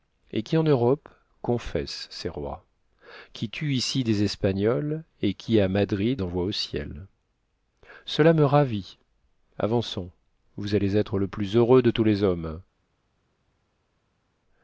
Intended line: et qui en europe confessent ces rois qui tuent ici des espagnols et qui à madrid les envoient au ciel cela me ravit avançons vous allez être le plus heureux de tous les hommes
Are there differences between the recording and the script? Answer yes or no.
yes